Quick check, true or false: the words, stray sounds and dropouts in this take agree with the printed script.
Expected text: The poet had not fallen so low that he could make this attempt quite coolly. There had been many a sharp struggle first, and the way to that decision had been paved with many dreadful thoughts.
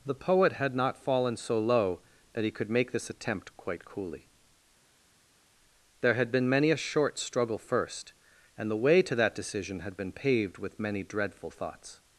false